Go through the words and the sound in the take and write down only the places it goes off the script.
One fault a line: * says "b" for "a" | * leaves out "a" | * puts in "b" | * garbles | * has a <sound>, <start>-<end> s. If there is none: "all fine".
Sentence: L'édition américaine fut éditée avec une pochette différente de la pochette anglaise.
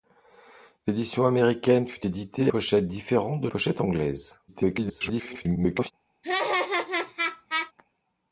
* leaves out "avec une"
* leaves out "la"
* garbles
* has a laugh, 6.2-7.7 s